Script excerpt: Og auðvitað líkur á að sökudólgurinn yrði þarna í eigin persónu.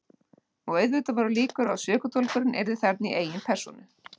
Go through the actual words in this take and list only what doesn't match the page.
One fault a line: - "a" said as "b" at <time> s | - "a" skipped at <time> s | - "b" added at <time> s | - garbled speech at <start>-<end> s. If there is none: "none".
- "voru" added at 1.2 s